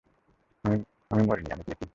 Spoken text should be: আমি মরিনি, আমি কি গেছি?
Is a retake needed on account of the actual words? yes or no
no